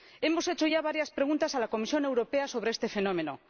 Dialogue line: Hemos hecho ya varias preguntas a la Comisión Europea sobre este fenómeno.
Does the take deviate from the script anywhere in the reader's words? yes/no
no